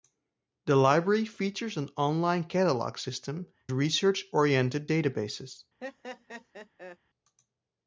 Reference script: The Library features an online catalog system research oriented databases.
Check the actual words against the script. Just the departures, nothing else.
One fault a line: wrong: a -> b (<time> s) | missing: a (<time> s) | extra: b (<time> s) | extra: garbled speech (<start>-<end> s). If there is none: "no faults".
no faults